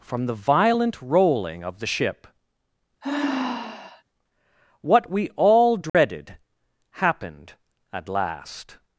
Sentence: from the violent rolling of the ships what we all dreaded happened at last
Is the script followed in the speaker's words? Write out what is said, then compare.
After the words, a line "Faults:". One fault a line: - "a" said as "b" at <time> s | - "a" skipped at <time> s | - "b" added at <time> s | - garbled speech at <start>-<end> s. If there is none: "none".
from the violent rolling of the ship what we all dreaded happened at last
Faults:
- "ships" said as "ship" at 1.9 s